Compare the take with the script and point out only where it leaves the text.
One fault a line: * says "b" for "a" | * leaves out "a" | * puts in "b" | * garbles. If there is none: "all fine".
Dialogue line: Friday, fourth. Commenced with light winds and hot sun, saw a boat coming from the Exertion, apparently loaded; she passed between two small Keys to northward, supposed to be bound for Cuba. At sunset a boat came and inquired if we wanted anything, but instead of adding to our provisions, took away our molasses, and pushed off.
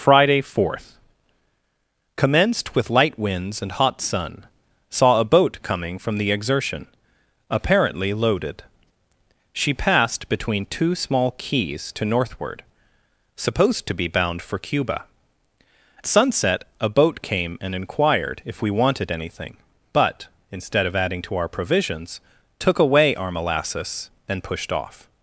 * leaves out "At"